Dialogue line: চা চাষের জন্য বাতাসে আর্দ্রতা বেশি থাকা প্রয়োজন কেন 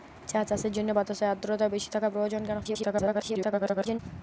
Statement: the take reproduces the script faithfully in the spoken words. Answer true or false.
false